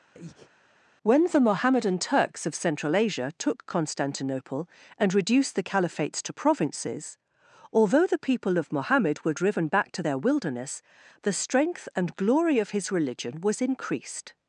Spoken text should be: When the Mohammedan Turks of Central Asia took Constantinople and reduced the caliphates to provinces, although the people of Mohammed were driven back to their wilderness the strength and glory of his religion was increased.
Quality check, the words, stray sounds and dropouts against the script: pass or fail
fail